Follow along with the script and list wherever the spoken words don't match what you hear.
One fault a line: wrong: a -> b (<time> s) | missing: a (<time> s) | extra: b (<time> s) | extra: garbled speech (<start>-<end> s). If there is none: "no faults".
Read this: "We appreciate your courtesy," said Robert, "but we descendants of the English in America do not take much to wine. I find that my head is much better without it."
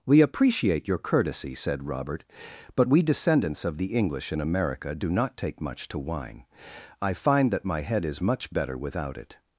no faults